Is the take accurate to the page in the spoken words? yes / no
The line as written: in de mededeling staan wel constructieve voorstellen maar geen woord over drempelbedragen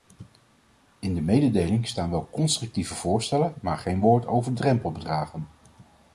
yes